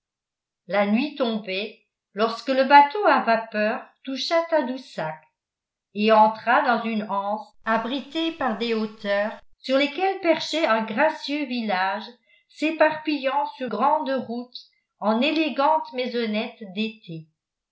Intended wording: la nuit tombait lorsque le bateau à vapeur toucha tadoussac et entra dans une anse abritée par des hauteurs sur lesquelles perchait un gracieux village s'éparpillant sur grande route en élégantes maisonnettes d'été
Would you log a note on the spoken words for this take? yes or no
no